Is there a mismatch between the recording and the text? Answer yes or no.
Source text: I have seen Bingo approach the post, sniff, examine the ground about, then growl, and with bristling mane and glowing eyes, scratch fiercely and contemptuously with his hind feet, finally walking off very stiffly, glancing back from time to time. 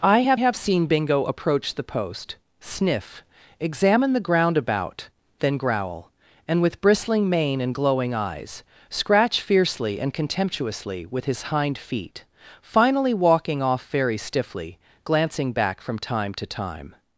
yes